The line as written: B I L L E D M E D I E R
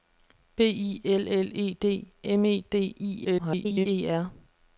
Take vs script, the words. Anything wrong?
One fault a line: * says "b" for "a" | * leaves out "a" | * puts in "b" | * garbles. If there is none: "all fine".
* garbles